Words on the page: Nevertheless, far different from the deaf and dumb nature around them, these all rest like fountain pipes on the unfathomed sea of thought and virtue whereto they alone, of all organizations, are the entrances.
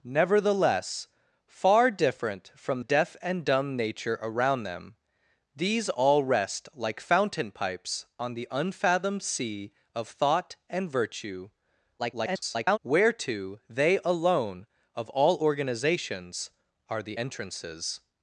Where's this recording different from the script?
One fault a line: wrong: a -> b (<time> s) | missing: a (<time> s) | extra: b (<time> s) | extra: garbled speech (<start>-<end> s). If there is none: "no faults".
missing: the (2.8 s)
extra: garbled speech (12.0-12.8 s)